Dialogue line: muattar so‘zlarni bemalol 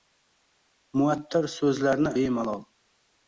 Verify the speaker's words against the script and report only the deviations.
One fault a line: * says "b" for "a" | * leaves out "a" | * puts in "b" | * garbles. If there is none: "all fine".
all fine